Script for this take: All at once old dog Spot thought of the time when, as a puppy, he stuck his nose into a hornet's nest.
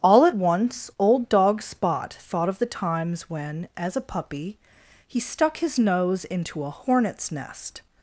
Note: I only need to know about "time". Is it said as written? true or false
false